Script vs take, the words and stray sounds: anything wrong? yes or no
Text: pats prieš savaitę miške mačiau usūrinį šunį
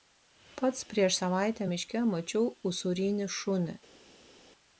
no